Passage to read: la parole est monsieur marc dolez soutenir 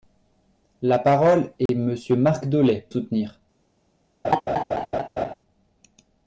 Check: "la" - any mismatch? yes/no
no